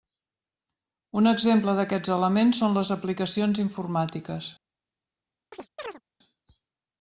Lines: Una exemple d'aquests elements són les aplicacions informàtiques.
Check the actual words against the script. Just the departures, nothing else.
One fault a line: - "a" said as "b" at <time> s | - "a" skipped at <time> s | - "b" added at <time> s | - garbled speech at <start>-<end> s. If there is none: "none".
- "Una" said as "Un" at 1.2 s